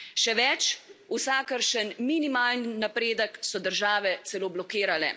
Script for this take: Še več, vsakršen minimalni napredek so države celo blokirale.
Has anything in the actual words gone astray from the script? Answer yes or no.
no